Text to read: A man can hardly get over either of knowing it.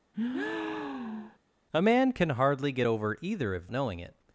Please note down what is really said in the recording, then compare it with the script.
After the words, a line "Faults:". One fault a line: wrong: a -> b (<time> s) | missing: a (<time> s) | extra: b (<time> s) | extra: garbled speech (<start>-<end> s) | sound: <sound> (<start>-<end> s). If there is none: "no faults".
A man can hardly get over either of knowing it.
Faults:
sound: breath (0.1-1.4 s)